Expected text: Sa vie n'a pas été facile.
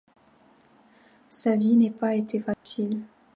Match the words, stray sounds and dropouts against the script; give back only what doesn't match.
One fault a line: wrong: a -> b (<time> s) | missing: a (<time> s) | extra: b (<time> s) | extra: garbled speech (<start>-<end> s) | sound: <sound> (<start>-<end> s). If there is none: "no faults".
sound: dropout (2.5-2.7 s)